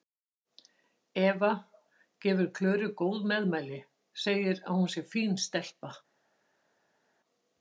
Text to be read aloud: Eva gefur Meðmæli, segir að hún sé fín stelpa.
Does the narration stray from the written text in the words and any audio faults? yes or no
yes